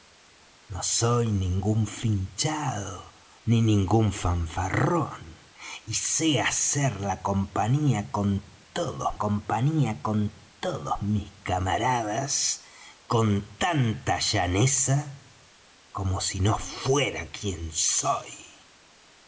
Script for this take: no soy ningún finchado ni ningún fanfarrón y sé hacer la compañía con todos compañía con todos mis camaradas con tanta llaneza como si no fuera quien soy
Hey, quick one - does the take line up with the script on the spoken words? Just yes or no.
yes